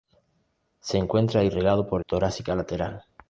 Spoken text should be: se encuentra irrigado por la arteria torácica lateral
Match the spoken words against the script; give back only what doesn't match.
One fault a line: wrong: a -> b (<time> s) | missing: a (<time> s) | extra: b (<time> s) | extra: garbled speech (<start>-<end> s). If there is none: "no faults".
missing: la arteria (2.0 s)